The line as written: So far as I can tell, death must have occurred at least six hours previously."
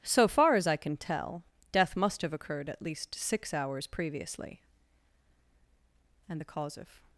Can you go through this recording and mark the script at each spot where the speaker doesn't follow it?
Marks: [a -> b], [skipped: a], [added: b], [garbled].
So far as I can tell, death must have occurred at least six hours previously." [added: And the cause of]